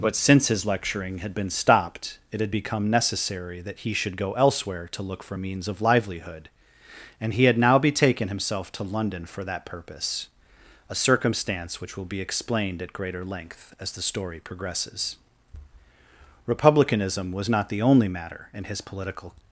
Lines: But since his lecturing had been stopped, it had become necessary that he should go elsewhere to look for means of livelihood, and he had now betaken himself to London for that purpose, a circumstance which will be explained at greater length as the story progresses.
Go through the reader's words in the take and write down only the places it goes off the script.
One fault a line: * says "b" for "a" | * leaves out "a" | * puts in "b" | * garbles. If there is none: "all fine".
* puts in "Republicanism was not the only matter in his political"